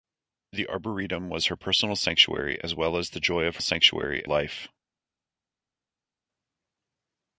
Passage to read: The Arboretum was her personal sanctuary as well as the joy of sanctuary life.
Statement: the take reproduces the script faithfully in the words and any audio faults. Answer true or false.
true